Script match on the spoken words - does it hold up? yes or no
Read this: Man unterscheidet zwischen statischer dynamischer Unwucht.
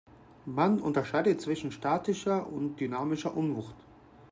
no